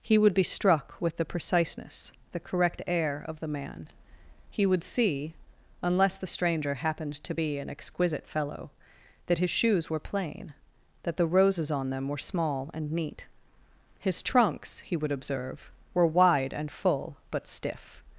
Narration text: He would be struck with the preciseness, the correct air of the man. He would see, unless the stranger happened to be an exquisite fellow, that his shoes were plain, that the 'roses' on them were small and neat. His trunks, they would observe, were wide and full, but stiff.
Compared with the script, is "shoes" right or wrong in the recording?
right